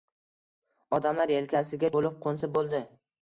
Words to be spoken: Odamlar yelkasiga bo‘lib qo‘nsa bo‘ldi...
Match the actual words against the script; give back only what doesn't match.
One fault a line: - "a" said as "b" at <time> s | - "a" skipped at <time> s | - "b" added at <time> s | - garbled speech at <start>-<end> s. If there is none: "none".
none